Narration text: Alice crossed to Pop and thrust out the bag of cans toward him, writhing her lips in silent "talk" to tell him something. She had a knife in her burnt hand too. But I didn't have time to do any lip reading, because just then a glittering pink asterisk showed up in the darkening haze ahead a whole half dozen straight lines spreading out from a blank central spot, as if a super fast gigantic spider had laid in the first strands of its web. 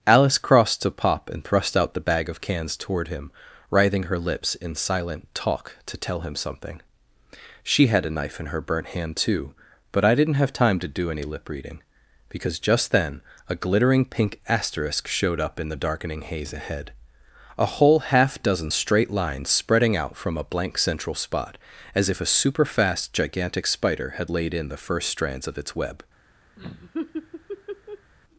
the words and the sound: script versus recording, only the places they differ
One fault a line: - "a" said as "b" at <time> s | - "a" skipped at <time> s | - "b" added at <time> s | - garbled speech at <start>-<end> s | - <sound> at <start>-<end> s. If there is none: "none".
- laugh at 26.6-28.1 s